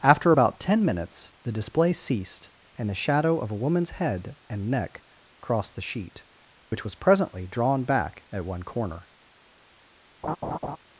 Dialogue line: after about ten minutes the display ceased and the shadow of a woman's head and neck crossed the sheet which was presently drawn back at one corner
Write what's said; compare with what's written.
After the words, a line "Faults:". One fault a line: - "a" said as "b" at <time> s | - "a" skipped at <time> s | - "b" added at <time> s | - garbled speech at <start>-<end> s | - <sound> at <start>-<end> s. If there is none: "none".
after about ten minutes the display ceased and the shadow of a woman's head and neck crossed the sheet which was presently drawn back at one corner
Faults:
- dropout at 6.7-6.7 s
- laugh at 10.2-10.8 s